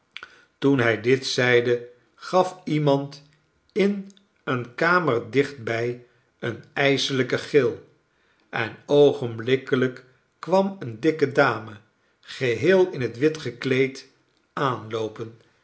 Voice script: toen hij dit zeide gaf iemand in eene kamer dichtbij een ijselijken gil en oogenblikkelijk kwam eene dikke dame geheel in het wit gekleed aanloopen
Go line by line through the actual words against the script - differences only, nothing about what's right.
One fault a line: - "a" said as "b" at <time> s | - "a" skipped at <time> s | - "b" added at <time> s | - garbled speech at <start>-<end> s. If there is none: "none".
none